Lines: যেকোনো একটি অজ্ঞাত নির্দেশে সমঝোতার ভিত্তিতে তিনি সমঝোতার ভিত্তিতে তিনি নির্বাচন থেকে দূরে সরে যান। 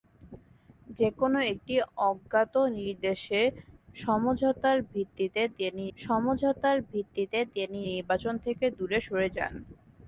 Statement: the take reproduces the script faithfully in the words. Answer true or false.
true